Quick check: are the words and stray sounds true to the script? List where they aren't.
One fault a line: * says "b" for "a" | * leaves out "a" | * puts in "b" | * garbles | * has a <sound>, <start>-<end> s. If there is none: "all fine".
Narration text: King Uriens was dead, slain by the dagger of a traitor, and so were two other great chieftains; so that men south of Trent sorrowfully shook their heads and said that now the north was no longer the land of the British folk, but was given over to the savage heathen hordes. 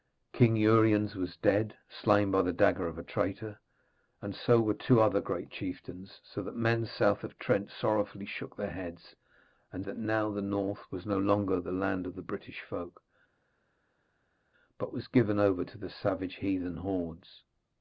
* leaves out "said"